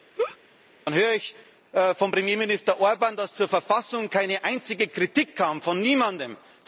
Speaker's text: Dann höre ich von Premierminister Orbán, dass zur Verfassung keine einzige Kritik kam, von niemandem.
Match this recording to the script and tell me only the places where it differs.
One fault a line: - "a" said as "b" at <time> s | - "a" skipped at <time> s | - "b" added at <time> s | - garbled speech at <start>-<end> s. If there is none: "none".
none